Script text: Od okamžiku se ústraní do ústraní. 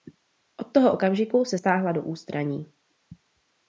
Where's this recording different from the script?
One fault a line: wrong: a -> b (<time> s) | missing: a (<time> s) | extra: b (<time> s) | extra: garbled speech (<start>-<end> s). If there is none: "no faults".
extra: toho (0.7 s)
wrong: ústraní -> stáhla (1.5 s)